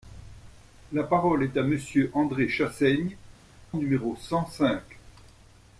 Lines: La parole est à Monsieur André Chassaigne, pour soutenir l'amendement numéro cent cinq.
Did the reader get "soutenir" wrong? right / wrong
wrong